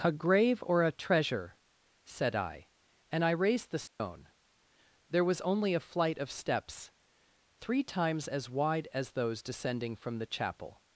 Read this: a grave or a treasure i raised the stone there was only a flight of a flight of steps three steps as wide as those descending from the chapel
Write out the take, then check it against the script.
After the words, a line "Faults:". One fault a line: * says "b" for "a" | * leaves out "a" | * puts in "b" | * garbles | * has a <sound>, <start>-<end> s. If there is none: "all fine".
a grave or a treasure said i and i raised the stone there was only a flight of steps three times as wide as those descending from the chapel
Faults:
* puts in "said"
* puts in "and i"
* has a dropout, 3.9-4.0 s
* leaves out "a flight of"
* says "times" for "steps"